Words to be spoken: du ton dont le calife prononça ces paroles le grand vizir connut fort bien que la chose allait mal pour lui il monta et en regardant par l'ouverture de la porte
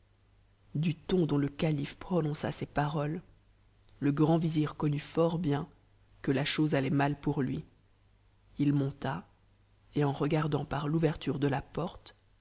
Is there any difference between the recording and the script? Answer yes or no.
no